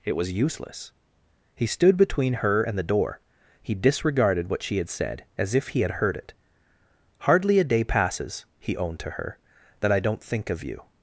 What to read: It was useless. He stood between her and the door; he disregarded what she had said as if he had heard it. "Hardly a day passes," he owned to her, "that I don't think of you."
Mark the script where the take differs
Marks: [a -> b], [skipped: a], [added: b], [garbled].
It was useless. He stood between her and the door; he disregarded what she had said as if he had heard it. "Hardly a day passes," he owned to her, "that I don't think of you."